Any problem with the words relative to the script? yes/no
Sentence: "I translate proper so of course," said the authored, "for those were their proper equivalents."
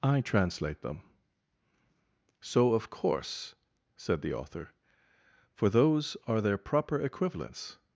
yes